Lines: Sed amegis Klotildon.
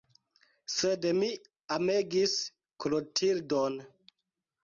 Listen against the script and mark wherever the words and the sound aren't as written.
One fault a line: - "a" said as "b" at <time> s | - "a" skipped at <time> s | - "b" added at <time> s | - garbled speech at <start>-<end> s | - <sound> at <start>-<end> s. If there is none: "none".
- "mi" added at 1.2 s